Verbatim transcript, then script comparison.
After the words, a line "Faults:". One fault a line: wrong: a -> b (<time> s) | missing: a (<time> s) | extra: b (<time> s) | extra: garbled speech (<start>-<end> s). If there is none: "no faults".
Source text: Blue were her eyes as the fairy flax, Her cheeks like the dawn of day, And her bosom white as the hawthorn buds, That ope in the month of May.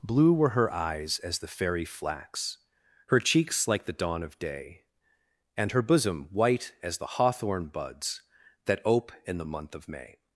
Blue were her eyes as the fairy flax, Her cheeks like the dawn of day, And her bosom white as the hawthorn buds, That ope in the month of May.
Faults:
no faults